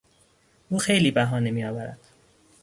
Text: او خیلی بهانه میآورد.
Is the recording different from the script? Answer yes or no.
no